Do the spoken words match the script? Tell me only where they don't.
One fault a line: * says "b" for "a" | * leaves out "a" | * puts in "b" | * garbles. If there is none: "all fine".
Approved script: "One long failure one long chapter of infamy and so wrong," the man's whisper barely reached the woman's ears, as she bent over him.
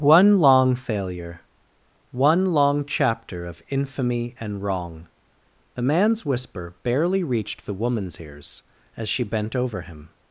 * leaves out "so"